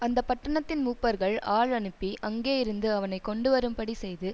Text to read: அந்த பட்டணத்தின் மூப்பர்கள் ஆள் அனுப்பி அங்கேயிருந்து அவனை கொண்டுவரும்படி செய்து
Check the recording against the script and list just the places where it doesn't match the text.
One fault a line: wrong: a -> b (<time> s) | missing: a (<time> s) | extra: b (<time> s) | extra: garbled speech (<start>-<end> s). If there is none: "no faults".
no faults